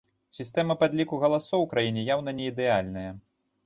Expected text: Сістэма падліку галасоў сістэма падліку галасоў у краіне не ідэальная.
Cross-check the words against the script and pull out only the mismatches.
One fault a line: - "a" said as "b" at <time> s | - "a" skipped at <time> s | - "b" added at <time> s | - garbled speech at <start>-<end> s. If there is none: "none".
- "сістэма падліку галасоў" skipped at 1.7 s
- "яўна" added at 2.2 s